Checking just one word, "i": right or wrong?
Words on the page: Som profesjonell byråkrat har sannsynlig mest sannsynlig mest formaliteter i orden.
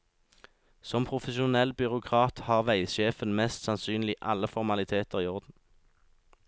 right